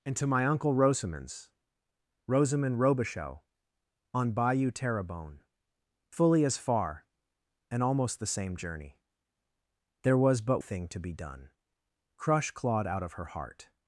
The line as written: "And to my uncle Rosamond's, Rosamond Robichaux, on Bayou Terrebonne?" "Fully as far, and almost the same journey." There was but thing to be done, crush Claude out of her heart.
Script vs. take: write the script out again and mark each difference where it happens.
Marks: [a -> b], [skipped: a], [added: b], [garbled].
"And to my uncle Rosamond's, Rosamond Robichaux, on Bayou Terrebonne?" "Fully as far, and almost the same journey." There was but thing to be done, crush Claude out of her heart.